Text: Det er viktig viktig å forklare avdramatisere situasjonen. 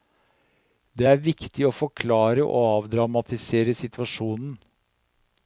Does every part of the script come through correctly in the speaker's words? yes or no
no